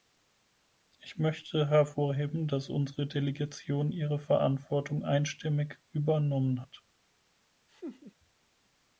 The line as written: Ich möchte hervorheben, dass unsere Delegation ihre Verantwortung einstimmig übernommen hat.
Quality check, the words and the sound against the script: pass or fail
fail